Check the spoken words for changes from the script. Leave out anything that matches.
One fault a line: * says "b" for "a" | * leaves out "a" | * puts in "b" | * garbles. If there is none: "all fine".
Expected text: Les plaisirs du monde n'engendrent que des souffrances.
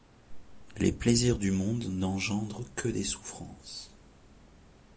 all fine